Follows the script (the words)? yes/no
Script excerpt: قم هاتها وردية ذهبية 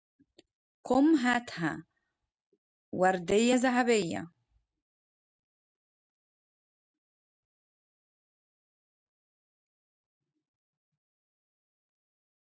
yes